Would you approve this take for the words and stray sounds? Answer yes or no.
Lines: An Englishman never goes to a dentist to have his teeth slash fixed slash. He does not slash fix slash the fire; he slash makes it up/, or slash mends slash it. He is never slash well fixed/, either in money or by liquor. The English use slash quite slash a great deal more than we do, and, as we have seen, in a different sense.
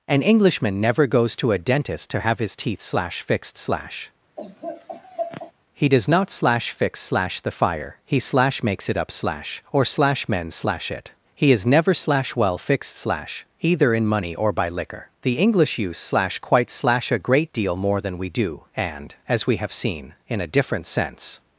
no